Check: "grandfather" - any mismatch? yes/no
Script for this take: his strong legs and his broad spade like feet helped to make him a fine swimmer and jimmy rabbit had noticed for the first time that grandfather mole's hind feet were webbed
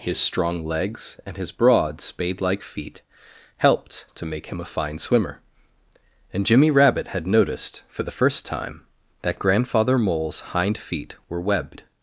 no